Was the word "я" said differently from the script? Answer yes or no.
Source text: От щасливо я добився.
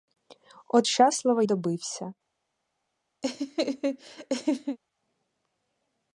yes